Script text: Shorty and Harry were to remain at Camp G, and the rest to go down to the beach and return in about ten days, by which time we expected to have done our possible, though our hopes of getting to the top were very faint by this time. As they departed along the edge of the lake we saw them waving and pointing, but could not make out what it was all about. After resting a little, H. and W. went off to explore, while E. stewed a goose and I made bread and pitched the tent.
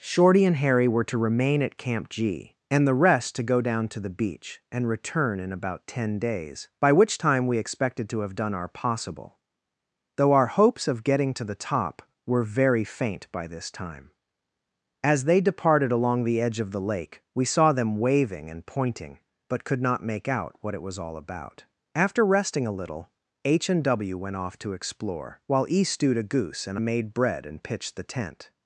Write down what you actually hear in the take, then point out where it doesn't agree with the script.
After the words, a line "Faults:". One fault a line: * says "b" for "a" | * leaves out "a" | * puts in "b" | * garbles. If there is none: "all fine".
Shorty and Harry were to remain at Camp G, and the rest to go down to the beach and return in about ten days, by which time we expected to have done our possible, though our hopes of getting to the top were very faint by this time. As they departed along the edge of the lake we saw them waving and pointing, but could not make out what it was all about. After resting a little, H. and W. went off to explore, while E. stewed a goose and made bread and pitched the tent.
Faults:
* leaves out "I"